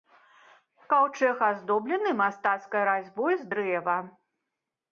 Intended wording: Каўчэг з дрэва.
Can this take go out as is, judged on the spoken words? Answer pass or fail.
fail